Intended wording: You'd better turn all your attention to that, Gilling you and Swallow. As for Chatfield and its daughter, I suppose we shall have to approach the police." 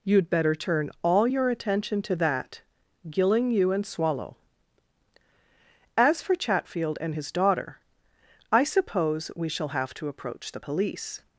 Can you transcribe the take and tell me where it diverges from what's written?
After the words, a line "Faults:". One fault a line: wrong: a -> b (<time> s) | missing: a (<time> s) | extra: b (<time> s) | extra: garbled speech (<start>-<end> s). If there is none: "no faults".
You'd better turn all your attention to that, Gilling you and Swallow. As for Chatfield and his daughter, I suppose we shall have to approach the police."
Faults:
wrong: its -> his (7.1 s)